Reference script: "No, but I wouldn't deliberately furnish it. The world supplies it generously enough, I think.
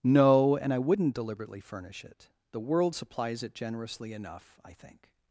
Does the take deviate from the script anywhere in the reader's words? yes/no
yes